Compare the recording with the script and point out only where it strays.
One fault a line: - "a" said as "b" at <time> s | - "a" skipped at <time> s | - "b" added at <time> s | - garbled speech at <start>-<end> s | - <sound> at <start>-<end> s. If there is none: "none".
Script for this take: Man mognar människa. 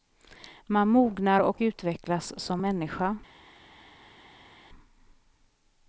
- "och utvecklas som" added at 1.4 s